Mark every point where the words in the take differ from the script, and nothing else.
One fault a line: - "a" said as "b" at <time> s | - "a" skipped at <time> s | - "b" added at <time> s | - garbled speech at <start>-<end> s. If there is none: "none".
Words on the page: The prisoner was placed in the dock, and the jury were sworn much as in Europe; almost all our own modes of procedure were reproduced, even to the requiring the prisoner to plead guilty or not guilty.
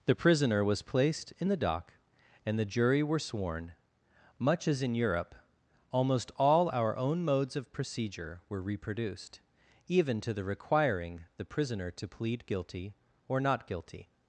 none